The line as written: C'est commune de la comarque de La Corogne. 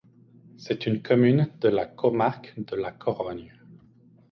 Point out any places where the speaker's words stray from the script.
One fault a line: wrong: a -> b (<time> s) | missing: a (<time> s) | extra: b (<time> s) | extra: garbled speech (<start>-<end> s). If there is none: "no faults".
extra: une (0.9 s)